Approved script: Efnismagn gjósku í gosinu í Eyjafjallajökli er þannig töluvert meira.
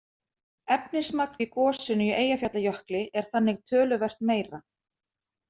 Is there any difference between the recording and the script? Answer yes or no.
yes